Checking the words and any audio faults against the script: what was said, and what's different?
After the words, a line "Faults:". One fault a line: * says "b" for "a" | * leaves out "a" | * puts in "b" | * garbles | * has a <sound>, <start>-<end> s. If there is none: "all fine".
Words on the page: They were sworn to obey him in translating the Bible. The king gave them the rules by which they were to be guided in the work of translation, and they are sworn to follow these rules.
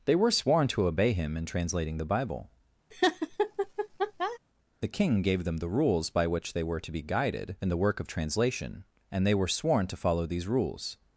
They were sworn to obey him in translating the Bible. The king gave them the rules by which they were to be guided in the work of translation, and they were sworn to follow these rules.
Faults:
* has a laugh, 2.9-4.4 s
* says "were" for "are"